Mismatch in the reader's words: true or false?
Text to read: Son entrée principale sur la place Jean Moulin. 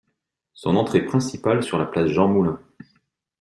false